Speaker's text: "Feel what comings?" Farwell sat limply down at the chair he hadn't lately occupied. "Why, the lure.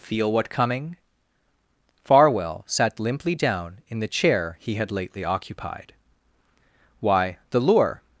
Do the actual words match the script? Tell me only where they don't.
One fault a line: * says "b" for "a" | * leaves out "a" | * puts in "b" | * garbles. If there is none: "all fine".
* says "coming" for "comings"
* says "in" for "at"
* says "had" for "hadn't"